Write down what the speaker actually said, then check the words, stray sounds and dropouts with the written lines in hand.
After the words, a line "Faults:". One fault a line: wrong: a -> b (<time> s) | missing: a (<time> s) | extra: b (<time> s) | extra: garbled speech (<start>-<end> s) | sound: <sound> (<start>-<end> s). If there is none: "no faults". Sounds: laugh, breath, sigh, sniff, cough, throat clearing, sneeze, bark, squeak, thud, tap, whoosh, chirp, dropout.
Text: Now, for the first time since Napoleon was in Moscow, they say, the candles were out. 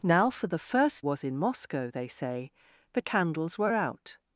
Now, for the first was in Moscow, they say, the candles were out.
Faults:
missing: time since Napoleon (1.1 s)